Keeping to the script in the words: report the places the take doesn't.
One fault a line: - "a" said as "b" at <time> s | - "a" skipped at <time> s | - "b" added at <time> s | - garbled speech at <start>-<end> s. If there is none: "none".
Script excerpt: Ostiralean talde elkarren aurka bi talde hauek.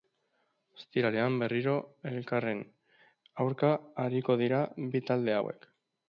- "talde" said as "berriro" at 1.4 s
- "ariko dira" added at 4.0 s